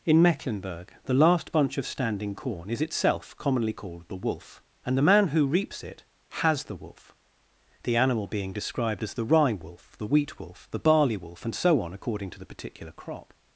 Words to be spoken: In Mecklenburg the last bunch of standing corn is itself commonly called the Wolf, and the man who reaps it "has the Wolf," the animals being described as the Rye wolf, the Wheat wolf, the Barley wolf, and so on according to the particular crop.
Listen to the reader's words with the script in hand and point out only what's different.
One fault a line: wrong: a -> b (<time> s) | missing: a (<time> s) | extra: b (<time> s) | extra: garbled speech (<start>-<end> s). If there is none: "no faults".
wrong: animals -> animal (8.0 s)